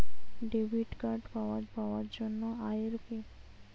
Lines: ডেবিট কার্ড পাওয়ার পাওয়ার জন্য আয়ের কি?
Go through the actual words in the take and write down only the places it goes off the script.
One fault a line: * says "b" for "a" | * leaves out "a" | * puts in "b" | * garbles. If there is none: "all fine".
all fine